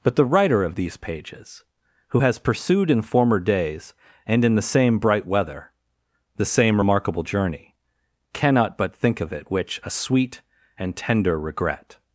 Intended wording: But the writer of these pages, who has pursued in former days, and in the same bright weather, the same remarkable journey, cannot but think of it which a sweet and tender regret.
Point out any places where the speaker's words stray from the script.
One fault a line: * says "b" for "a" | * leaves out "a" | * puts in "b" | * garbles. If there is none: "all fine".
all fine